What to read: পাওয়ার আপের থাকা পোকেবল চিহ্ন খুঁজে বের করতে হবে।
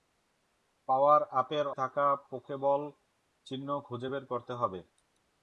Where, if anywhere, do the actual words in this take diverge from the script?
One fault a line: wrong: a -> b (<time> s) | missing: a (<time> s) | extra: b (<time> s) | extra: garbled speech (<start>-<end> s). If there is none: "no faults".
no faults